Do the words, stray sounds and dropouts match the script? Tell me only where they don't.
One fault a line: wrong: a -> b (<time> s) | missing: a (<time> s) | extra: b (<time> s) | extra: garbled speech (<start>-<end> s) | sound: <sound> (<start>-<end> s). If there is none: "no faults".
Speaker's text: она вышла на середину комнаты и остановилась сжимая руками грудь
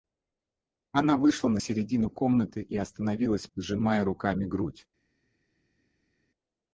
no faults